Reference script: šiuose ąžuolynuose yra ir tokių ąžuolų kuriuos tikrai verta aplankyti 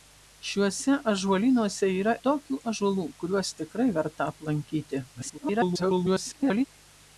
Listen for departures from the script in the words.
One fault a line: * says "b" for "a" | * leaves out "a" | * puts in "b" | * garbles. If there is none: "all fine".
* leaves out "ir"
* garbles